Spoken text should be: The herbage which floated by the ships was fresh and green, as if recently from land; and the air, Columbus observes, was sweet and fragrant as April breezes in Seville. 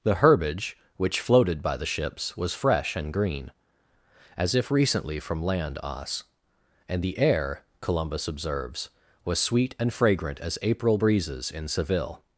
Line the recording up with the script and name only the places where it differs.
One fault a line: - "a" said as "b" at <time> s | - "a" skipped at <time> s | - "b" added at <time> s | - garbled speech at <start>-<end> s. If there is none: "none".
- "os" added at 5.8 s